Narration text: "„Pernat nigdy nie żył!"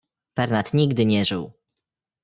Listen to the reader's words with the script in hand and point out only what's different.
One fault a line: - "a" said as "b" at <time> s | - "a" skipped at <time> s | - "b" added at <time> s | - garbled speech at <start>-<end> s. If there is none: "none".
none